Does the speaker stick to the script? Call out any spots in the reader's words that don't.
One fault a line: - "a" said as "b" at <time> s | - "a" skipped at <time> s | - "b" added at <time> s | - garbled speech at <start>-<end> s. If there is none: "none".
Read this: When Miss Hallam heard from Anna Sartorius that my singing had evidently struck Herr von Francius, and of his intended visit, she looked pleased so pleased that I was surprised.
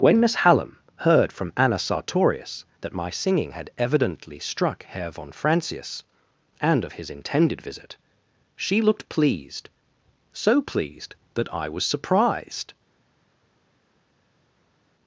none